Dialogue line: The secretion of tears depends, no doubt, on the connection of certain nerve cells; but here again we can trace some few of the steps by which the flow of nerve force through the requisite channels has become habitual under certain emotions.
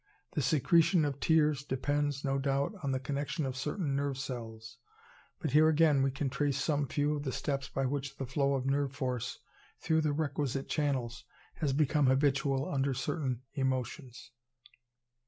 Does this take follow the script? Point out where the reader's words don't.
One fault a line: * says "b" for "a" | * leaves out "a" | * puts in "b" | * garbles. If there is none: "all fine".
all fine